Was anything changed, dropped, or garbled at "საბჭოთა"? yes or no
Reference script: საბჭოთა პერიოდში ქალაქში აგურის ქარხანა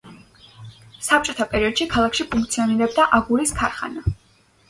no